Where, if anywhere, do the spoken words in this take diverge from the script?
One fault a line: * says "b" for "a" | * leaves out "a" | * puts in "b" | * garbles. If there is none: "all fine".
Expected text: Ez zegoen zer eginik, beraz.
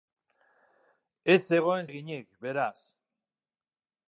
* leaves out "zer"